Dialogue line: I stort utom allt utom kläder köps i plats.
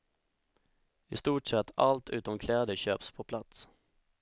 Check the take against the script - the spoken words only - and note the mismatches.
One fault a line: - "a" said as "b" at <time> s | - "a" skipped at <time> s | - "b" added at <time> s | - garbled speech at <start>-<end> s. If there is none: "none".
- "utom" said as "sett" at 1.5 s
- "i" said as "på" at 3.1 s